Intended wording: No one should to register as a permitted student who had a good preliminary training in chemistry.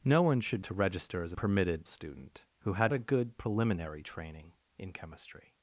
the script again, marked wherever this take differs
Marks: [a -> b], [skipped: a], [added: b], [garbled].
No one should to register as a permitted student who had a good preliminary training in chemistry.